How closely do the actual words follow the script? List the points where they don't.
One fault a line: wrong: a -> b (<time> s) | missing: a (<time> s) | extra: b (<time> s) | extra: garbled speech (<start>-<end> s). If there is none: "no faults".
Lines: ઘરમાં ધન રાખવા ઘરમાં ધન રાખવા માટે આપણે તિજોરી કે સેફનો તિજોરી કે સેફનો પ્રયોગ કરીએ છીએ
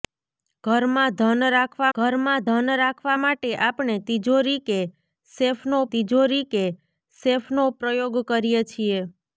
no faults